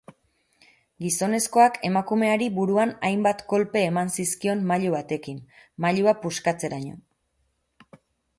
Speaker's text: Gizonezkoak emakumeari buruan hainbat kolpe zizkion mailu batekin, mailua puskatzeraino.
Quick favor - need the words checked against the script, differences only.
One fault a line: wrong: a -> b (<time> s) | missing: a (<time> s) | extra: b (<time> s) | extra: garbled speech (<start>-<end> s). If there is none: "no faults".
extra: eman (3.9 s)